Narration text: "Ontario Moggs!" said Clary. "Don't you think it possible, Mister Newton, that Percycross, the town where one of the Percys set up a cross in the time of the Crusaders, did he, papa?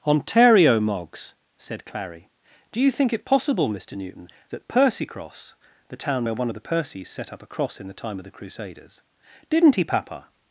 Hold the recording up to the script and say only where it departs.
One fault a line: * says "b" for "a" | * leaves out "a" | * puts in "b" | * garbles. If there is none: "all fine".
* says "Do" for "Don't"
* says "didn't" for "did"